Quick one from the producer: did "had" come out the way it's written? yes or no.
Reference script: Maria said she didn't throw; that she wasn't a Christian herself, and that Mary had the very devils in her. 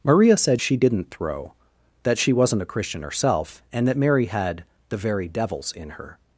yes